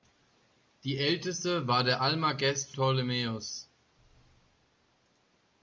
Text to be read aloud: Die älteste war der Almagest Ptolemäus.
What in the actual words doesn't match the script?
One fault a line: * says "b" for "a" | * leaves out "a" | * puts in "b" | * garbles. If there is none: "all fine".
all fine